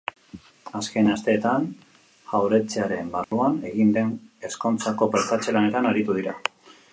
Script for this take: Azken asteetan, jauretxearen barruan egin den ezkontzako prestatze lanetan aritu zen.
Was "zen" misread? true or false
true